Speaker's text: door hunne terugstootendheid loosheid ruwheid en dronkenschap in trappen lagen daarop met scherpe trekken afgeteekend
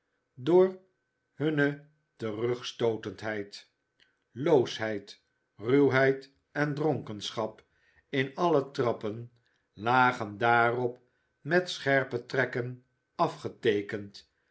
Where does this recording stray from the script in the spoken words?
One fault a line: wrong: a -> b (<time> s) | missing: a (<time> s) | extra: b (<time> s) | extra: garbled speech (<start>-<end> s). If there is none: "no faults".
extra: alle (8.3 s)